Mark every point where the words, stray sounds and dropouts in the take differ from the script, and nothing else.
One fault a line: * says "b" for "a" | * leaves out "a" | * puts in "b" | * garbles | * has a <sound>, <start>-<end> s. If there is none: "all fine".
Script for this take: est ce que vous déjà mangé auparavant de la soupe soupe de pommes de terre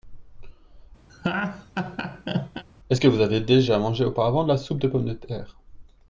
* has a laugh, 1.1-2.6 s
* puts in "avez"
* leaves out "soupe"